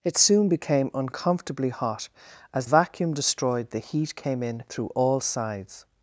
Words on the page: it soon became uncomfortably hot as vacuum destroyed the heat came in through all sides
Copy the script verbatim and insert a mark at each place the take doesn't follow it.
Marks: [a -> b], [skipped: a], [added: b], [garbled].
it soon became uncomfortably hot as vacuum destroyed the heat came in through all sides